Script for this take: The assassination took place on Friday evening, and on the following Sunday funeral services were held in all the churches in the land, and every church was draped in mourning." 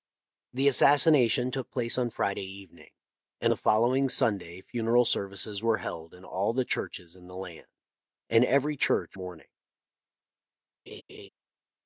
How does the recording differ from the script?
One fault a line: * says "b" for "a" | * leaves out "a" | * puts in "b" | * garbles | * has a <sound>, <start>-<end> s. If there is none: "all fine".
* leaves out "on"
* leaves out "was draped in"
* has a laugh, 10.9-11.3 s